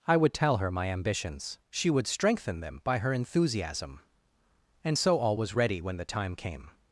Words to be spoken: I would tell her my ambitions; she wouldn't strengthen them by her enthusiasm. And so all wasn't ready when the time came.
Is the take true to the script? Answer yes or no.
no